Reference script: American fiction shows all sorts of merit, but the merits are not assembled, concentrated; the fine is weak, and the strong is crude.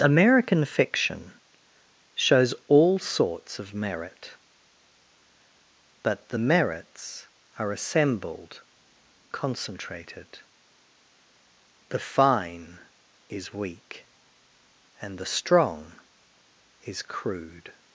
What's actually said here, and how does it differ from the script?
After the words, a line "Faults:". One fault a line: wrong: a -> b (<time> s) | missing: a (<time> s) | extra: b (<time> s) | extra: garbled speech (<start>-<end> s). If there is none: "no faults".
American fiction shows all sorts of merit, but the merits are assembled, concentrated; the fine is weak, and the strong is crude.
Faults:
missing: not (7.7 s)